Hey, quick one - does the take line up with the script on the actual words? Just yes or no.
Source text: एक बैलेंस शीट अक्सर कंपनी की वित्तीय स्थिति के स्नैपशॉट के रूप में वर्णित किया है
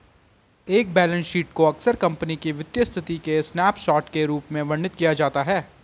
no